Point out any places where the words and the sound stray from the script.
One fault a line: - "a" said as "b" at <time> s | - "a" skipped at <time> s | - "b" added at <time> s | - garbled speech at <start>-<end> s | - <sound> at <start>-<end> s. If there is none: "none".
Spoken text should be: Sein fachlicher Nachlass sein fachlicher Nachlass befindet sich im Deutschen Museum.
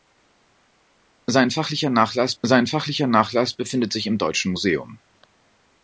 none